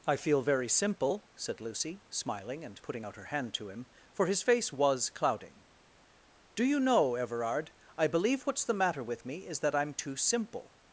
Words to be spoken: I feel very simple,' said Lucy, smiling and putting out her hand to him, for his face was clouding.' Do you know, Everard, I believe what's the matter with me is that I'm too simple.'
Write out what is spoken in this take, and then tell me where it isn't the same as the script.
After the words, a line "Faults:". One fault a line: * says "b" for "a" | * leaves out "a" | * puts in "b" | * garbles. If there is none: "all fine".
I feel very simple,' said Lucy, smiling and putting out her hand to him, for his face was clouding.' Do you know, Everard, I believe what's the matter with me is that I'm too simple.'
Faults:
all fine